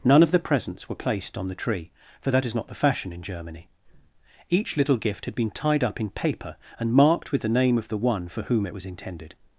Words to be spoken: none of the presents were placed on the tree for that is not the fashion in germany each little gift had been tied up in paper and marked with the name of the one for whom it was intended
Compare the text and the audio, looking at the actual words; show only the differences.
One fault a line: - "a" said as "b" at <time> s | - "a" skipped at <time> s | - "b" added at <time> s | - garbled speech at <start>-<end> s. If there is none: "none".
none